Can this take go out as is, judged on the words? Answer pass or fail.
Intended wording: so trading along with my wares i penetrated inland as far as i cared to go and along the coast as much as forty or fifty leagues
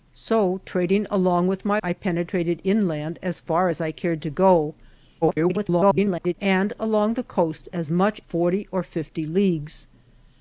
fail